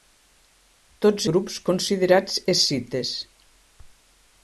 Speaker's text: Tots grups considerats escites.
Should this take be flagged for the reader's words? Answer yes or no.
no